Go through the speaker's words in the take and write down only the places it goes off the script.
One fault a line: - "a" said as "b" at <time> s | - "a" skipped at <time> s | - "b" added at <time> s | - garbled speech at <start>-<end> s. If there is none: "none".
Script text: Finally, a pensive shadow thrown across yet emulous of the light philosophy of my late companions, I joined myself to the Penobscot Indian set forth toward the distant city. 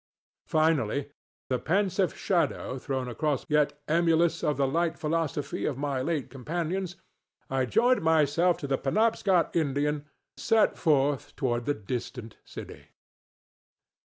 none